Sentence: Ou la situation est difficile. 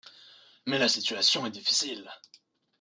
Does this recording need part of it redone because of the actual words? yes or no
yes